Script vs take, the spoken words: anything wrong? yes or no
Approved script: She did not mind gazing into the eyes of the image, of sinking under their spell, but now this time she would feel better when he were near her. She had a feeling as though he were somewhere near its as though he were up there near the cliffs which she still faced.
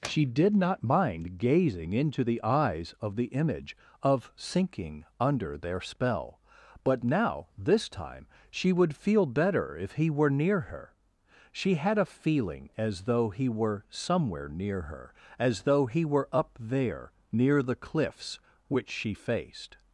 yes